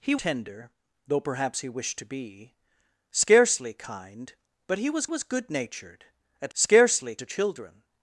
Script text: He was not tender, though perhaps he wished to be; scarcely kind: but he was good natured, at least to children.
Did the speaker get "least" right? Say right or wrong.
wrong